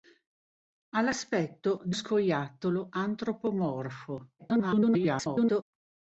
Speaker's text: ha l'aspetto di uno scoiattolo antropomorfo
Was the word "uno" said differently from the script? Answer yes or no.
yes